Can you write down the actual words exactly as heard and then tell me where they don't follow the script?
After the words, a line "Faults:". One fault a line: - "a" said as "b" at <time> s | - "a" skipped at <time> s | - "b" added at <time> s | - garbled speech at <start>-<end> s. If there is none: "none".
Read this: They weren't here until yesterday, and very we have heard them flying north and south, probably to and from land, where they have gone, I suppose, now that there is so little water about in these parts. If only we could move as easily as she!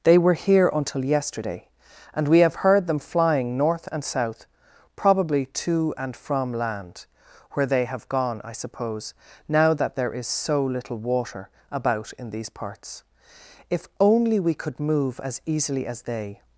They were here until yesterday, and we have heard them flying north and south, probably to and from land, where they have gone, I suppose, now that there is so little water about in these parts. If only we could move as easily as they!
Faults:
- "weren't" said as "were" at 0.2 s
- "very" skipped at 2.3 s
- "she" said as "they" at 16.0 s